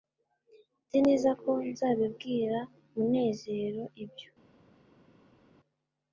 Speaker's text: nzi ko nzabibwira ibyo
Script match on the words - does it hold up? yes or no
no